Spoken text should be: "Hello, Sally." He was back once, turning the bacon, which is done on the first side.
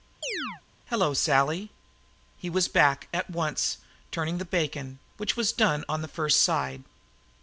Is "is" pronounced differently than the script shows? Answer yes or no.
yes